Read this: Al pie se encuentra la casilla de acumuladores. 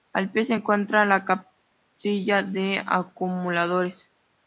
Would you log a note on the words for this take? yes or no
no